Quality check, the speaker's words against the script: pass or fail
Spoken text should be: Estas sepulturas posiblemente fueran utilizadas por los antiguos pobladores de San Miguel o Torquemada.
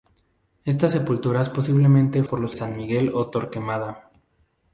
fail